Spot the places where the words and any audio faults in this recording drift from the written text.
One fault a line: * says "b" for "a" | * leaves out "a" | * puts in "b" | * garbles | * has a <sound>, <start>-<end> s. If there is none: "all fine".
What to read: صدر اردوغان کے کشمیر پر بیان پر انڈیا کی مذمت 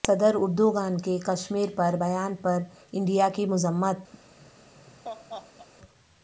* has a laugh, 4.1-5.7 s